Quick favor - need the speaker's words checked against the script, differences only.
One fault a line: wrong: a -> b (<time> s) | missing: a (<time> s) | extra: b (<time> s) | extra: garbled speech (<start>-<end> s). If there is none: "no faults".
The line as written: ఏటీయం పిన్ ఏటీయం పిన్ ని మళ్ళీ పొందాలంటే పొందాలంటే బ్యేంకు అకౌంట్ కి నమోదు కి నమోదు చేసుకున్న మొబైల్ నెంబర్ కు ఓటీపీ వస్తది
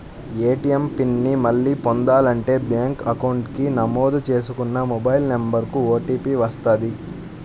missing: ఏటీయం పిన్ (1.1 s)
missing: పొందాలంటే (2.5 s)
missing: కి నమోదు (4.2 s)